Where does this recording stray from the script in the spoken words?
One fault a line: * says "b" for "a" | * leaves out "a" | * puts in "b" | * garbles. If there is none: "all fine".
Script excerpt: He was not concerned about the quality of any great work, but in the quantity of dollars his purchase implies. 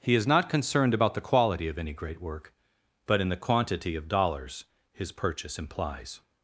* says "is" for "was"